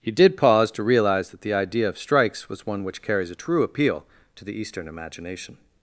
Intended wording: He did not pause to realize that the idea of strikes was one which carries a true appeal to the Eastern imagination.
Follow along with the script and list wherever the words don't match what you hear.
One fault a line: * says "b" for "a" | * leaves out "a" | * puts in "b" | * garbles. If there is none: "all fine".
* leaves out "not"